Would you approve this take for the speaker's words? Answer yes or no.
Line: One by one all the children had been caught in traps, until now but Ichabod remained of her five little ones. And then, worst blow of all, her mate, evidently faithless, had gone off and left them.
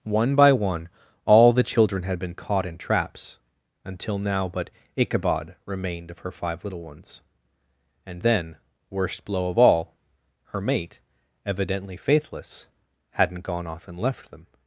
no